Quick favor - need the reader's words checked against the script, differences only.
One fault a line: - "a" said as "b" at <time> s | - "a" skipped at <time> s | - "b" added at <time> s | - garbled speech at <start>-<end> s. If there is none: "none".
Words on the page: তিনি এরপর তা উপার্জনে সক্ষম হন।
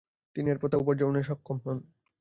none